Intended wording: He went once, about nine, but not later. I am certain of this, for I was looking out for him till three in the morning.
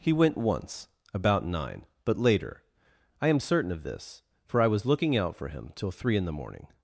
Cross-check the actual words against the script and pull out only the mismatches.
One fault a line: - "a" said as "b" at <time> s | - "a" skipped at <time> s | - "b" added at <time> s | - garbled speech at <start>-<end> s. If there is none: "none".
- "not" skipped at 2.2 s